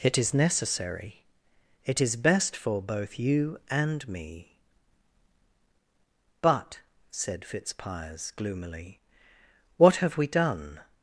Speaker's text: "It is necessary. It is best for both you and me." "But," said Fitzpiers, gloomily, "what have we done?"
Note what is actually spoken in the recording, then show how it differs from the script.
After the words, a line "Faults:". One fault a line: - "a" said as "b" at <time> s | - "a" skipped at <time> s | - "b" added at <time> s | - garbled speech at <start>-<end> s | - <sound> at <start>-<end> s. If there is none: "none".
"It is necessary. It is best for both you and me." "But," said Fitzpiers, gloomily, "what have we done?"
Faults:
none